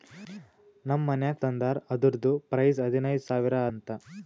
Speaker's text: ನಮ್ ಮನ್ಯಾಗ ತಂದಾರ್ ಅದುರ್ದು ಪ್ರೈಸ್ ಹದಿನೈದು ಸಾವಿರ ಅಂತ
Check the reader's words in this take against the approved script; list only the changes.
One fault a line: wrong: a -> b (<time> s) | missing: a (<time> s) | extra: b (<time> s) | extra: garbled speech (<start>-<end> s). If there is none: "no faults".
no faults